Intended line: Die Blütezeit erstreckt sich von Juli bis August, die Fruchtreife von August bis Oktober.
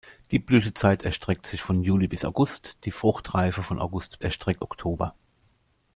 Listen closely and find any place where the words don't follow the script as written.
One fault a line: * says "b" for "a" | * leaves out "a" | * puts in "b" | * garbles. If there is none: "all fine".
* says "erstreckt" for "bis"